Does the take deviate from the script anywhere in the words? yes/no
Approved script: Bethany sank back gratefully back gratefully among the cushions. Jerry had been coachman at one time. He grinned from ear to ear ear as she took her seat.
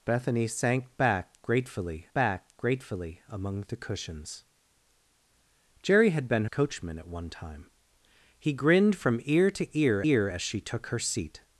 no